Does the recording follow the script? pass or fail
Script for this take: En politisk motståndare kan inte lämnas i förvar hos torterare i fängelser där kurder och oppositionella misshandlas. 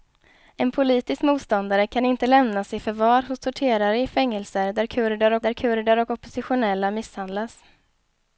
fail